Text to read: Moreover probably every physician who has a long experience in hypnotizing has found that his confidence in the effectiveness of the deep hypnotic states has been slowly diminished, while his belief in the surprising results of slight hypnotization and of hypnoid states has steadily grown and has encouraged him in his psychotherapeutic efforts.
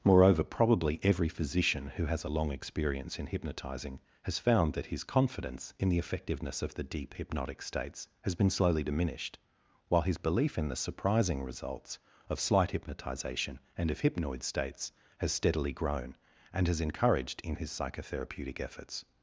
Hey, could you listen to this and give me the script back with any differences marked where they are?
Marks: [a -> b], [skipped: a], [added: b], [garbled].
Moreover probably every physician who has a long experience in hypnotizing has found that his confidence in the effectiveness of the deep hypnotic states has been slowly diminished, while his belief in the surprising results of slight hypnotization and of hypnoid states has steadily grown and has encouraged [skipped: him] in his psychotherapeutic efforts.